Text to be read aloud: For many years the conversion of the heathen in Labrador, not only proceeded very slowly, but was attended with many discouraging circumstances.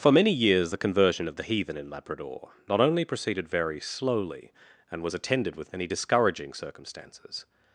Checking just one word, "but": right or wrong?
wrong